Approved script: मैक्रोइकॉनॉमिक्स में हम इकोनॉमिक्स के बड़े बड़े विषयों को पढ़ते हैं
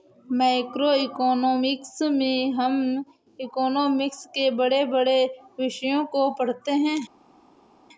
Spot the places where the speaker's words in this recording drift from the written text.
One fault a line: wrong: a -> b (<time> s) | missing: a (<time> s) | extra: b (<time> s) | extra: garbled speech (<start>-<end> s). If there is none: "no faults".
no faults